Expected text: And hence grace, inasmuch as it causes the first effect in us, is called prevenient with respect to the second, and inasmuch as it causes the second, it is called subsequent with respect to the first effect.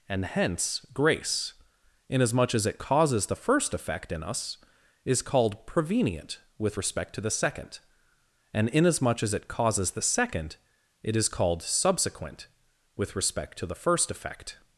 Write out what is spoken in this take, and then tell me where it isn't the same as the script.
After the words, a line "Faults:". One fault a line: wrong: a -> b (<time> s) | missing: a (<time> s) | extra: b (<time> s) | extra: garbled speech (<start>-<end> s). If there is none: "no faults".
And hence grace, inasmuch as it causes the first effect in us, is called prevenient with respect to the second, and inasmuch as it causes the second, it is called subsequent with respect to the first effect.
Faults:
no faults